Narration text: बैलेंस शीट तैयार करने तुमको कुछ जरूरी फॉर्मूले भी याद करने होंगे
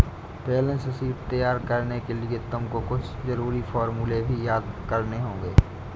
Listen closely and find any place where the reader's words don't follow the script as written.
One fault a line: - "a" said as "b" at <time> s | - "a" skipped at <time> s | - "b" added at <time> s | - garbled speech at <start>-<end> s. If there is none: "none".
- "के लिए" added at 2.0 s